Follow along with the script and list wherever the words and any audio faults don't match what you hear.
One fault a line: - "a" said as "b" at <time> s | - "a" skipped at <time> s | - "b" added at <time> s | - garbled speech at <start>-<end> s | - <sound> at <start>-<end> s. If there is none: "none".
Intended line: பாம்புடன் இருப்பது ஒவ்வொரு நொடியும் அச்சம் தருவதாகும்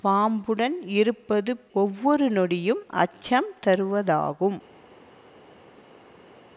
none